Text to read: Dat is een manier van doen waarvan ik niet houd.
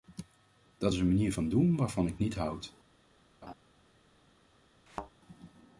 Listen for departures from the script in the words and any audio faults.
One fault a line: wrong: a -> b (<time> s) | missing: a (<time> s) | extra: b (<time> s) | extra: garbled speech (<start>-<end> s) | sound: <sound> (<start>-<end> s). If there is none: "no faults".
sound: laugh (3.4-3.5 s)
sound: thud (4.9-5.1 s)